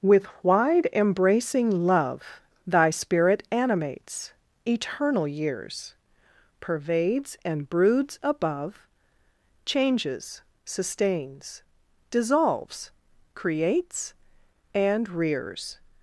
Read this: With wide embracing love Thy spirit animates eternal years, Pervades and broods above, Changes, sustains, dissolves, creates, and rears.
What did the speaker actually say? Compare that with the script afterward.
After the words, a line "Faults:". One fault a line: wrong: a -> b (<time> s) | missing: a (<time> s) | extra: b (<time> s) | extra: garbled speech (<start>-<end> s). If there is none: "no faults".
With wide embracing love Thy spirit animates eternal years, Pervades and broods above, Changes, sustains, dissolves, creates, and rears.
Faults:
no faults